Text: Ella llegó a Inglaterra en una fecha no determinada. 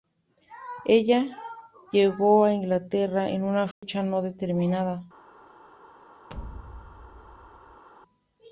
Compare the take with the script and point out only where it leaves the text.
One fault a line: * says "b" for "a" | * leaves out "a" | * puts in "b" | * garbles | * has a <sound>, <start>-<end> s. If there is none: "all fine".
* has a dropout, 3.7-3.8 s
* has a thud, 6.3-7.8 s